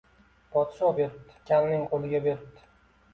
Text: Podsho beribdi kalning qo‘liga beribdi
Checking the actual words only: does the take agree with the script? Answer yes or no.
yes